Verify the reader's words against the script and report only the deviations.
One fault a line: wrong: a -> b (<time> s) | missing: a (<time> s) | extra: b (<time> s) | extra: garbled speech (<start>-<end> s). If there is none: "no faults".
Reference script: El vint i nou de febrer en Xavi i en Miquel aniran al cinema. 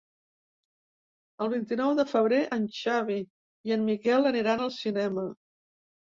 no faults